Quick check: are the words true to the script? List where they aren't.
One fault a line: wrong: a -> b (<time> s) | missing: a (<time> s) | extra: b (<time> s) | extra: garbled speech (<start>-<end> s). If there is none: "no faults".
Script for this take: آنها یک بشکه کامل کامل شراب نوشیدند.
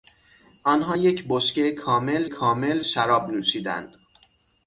no faults